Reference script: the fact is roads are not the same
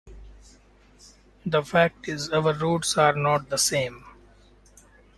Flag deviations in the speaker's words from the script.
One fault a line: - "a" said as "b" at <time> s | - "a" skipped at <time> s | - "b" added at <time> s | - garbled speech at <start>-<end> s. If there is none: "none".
- "our" added at 2.3 s